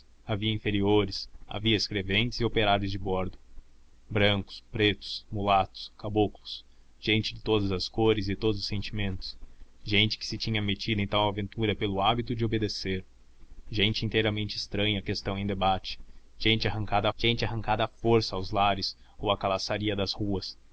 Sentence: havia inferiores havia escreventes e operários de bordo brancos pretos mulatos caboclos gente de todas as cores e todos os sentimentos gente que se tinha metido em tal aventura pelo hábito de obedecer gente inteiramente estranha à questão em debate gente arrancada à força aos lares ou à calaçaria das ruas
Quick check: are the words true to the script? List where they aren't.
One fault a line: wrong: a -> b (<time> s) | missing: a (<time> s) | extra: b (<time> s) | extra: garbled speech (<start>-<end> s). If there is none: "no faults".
extra: gente arrancada (17.2 s)